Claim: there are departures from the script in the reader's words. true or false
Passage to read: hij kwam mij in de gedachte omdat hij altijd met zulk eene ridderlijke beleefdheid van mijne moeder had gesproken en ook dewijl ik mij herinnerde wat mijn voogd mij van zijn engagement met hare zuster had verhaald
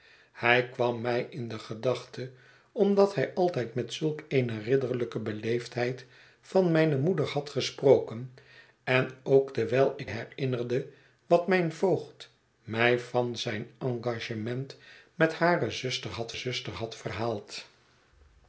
true